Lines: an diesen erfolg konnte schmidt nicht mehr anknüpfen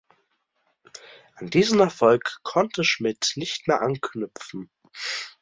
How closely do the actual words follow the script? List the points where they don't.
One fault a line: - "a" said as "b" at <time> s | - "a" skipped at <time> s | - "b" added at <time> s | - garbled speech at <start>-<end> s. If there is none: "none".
none